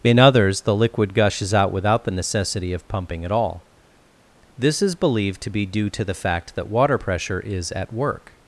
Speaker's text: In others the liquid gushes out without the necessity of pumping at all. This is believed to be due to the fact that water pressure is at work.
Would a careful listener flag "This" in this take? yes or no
no